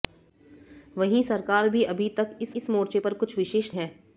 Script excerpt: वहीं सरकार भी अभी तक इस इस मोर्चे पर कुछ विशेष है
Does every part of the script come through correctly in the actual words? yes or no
yes